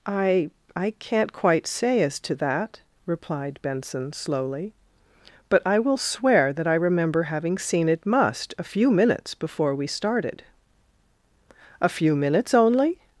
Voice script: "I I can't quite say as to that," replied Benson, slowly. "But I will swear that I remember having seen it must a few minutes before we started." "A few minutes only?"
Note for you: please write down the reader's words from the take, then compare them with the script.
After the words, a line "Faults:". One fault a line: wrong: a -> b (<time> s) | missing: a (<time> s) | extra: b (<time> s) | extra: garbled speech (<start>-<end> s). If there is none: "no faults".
"I I can't quite say as to that," replied Benson, slowly. "But I will swear that I remember having seen it must a few minutes before we started." "A few minutes only?"
Faults:
no faults